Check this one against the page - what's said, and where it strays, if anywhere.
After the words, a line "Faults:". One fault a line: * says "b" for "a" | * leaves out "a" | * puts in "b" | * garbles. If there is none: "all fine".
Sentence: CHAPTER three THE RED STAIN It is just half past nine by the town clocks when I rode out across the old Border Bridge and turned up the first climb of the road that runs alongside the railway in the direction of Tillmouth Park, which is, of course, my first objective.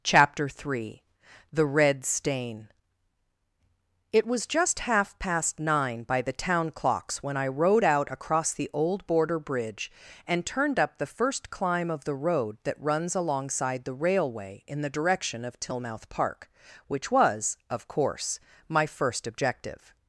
CHAPTER three THE RED STAIN It was just half past nine by the town clocks when I rode out across the old Border Bridge and turned up the first climb of the road that runs alongside the railway in the direction of Tillmouth Park, which was, of course, my first objective.
Faults:
* says "was" for "is"
* says "was" for "is"